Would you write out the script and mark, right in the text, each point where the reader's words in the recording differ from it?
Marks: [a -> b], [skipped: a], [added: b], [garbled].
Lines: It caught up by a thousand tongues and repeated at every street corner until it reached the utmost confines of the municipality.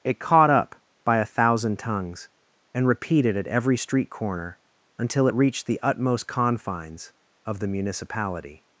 It caught up by a thousand tongues and repeated at every street corner until it reached the utmost confines of the municipality.